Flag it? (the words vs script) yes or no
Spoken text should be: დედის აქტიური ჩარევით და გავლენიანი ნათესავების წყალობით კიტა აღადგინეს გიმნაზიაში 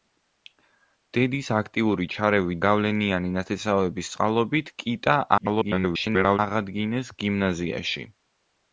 yes